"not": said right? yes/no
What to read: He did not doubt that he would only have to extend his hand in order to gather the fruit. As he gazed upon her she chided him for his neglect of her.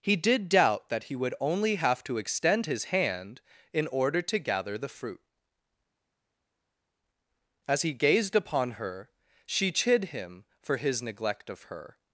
no